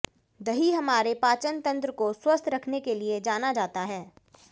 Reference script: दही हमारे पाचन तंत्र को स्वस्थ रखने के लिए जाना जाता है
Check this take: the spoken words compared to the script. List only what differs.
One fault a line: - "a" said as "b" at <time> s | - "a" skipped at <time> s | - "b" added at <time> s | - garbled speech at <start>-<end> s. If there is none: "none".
none